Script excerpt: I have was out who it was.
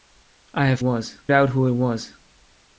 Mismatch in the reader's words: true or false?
false